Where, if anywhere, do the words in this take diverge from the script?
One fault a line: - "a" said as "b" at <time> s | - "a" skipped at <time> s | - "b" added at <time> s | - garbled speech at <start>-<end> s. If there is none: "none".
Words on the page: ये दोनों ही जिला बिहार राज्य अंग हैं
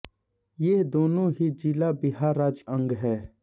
none